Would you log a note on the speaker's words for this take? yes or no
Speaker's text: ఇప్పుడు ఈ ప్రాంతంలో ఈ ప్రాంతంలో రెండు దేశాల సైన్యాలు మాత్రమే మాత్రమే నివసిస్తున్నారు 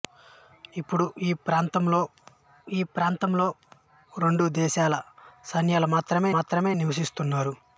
no